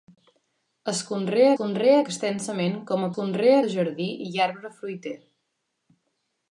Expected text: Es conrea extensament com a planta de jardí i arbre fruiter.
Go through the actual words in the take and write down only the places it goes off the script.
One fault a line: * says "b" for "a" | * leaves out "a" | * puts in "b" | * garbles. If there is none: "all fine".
* puts in "conrea"
* says "conrea" for "planta"